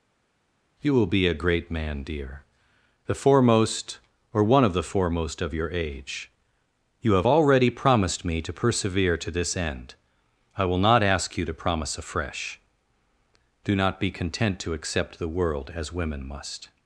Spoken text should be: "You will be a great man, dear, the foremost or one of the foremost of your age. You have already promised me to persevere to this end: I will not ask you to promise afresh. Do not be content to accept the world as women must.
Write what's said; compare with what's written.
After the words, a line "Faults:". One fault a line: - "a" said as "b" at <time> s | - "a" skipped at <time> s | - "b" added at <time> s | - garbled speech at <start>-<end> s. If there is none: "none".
"You will be a great man, dear, the foremost or one of the foremost of your age. You have already promised me to persevere to this end: I will not ask you to promise afresh. Do not be content to accept the world as women must.
Faults:
none